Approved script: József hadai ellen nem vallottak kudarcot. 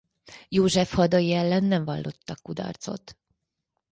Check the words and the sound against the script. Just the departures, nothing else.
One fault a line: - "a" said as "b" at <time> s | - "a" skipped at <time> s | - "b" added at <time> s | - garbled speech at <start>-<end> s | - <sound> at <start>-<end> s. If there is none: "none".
none